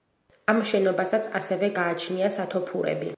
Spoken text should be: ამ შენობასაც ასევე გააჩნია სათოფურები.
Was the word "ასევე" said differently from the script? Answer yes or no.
no